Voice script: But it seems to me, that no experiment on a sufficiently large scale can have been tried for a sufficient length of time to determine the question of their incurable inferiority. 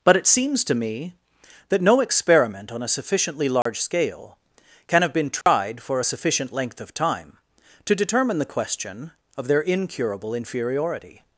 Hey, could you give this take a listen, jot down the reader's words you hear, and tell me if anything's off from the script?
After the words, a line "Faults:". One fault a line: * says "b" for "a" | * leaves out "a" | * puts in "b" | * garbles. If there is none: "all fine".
But it seems to me, that no experiment on a sufficiently large scale can have been tried for a sufficient length of time to determine the question of their incurable inferiority.
Faults:
all fine